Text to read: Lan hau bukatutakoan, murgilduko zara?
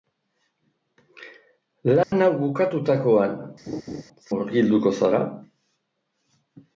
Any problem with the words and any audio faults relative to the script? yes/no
yes